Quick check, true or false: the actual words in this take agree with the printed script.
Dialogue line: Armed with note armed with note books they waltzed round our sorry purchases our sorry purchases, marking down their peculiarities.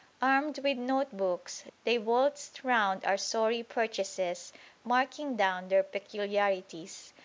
false